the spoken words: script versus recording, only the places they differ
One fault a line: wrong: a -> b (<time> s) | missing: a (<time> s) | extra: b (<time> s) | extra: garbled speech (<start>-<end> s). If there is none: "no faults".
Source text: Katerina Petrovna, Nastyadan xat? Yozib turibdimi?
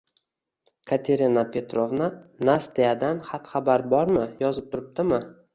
extra: xabar bormi (3.6 s)